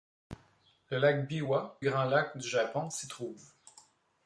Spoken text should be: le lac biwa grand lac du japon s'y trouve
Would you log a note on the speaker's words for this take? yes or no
no